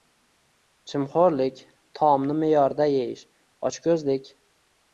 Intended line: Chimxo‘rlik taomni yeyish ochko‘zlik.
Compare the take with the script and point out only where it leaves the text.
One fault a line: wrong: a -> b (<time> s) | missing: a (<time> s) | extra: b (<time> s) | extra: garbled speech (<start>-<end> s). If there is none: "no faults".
extra: me'yorida (2.4 s)